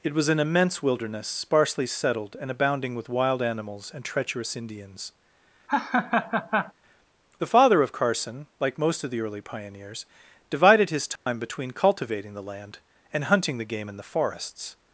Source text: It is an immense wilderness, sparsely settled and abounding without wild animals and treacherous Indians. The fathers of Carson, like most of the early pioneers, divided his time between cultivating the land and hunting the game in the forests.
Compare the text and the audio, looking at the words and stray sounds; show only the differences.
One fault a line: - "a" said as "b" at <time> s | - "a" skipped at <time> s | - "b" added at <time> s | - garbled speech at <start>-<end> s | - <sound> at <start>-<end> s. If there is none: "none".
- "is" said as "was" at 0.1 s
- "without" said as "with" at 3.0 s
- laugh at 5.7-6.7 s
- "fathers" said as "father" at 7.5 s
- dropout at 11.2-11.3 s